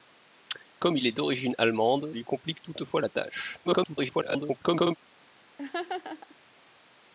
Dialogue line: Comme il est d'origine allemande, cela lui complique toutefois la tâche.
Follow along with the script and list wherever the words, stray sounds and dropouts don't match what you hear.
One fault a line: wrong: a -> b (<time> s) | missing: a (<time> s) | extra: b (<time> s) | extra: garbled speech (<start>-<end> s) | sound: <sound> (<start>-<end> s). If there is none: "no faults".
missing: cela (2.1 s)
extra: garbled speech (3.6-5.0 s)
sound: laugh (5.6-6.4 s)